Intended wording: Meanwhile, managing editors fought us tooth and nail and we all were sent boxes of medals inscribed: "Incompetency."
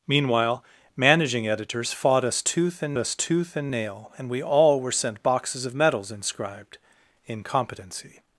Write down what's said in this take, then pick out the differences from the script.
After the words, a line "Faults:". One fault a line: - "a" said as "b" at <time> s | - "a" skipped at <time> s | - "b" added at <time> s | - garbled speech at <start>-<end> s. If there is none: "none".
Meanwhile, managing editors fought us tooth and us tooth and nail and we all were sent boxes of medals inscribed: "Incompetency."
Faults:
- "us tooth and" added at 3.0 s